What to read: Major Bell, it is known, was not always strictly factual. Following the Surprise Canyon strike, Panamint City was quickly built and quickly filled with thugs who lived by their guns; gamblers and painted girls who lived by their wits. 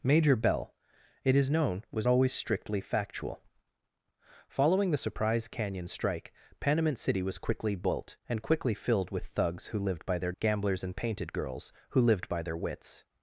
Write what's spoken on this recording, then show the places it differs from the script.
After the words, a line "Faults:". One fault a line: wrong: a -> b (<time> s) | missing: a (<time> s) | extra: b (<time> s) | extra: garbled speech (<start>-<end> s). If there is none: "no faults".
Major Bell, it is known, was always strictly factual. Following the Surprise Canyon strike, Panamint City was quickly built and quickly filled with thugs who lived by their; gamblers and painted girls who lived by their wits.
Faults:
missing: not (2.1 s)
missing: guns (10.3 s)